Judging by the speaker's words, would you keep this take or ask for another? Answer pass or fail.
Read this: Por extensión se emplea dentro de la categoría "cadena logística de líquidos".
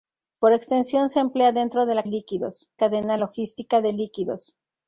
fail